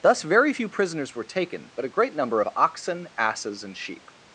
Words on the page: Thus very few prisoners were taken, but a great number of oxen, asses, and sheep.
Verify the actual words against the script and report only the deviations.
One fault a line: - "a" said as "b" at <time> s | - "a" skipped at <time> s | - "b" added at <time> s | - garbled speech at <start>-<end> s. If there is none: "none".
none